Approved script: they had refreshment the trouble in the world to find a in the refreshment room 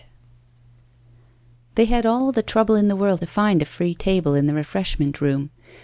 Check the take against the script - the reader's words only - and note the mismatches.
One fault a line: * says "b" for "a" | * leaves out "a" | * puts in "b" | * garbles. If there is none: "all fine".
* says "all" for "refreshment"
* puts in "free table"